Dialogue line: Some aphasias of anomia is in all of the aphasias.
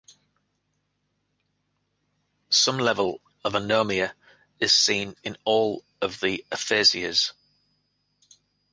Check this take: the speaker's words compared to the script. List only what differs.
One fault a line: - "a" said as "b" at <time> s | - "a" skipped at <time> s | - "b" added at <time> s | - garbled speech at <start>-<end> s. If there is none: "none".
- "aphasias" said as "level" at 2.8 s
- "seen" added at 4.7 s